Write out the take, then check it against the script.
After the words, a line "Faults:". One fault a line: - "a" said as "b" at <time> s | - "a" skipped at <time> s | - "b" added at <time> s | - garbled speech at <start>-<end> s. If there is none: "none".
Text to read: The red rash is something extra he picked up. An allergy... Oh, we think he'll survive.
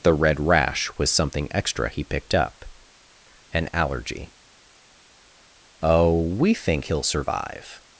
The red rash was something extra he picked up. An allergy... Oh, we think he'll survive.
Faults:
- "is" said as "was" at 1.0 s